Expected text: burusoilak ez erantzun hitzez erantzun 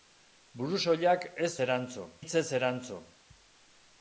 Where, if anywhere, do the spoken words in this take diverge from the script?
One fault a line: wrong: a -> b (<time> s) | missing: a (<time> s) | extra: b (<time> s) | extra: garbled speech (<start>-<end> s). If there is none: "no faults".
no faults